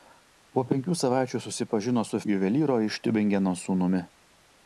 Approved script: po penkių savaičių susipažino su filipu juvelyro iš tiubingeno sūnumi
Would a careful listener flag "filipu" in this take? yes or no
yes